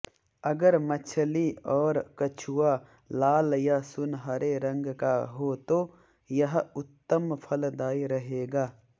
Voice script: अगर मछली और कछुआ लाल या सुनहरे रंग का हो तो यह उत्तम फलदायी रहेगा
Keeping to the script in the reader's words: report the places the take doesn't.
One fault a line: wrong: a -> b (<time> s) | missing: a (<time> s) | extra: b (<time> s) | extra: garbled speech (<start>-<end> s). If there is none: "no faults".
no faults